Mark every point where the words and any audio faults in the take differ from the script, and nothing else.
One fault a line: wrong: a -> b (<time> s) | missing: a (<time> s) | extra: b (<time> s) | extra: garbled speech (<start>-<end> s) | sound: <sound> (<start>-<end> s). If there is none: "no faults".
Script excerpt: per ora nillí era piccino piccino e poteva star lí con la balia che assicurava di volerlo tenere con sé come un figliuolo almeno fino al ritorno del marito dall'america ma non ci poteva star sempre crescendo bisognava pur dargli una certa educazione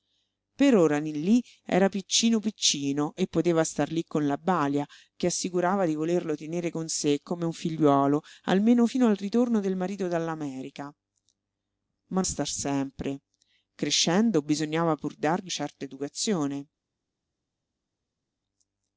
missing: non ci poteva (12.2 s)
missing: una (15.5 s)